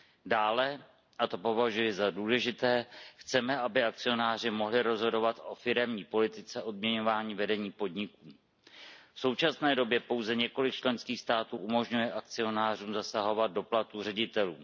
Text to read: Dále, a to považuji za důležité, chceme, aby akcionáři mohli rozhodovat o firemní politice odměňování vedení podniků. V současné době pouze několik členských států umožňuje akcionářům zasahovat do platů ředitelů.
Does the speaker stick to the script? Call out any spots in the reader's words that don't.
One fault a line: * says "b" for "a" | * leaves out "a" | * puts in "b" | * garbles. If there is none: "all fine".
all fine